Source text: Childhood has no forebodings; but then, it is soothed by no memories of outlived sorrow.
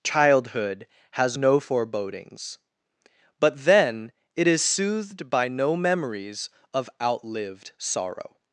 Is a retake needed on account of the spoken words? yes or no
no